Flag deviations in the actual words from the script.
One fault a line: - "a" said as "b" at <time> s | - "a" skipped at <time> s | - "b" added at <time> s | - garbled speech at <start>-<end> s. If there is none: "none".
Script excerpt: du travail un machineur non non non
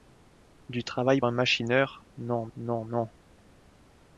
none